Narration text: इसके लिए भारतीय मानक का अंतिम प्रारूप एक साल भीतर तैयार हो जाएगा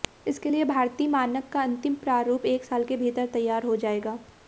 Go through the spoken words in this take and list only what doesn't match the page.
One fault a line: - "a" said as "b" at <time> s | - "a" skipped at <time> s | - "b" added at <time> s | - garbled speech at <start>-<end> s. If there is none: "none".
- "के" added at 2.8 s